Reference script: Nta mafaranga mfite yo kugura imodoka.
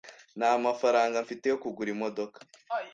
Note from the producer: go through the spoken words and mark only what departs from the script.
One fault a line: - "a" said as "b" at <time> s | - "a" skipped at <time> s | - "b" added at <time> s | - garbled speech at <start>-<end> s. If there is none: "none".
none